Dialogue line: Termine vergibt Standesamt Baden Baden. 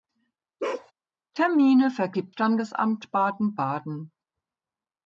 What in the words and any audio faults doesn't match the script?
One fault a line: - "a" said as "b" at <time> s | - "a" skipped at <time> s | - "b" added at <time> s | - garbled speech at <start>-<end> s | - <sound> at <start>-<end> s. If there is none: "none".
- bark at 0.6-0.9 s